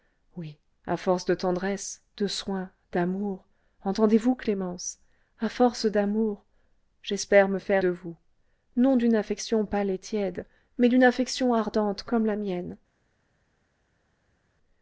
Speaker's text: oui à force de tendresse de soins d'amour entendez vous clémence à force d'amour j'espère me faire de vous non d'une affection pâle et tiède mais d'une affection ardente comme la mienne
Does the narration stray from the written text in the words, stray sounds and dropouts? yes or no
no